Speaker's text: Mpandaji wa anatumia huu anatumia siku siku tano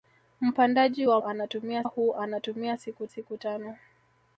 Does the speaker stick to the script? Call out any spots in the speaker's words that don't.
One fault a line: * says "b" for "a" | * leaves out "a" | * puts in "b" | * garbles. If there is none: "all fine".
all fine